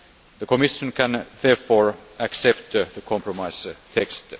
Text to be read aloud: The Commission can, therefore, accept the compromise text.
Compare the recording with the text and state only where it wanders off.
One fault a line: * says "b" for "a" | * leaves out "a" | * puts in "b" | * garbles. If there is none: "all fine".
all fine